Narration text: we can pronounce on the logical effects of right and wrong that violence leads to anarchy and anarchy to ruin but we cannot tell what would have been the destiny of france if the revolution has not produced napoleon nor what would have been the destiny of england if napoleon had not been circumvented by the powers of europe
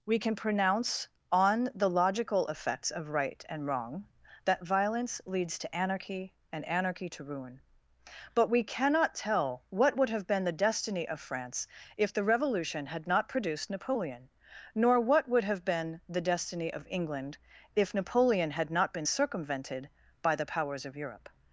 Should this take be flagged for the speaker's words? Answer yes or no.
yes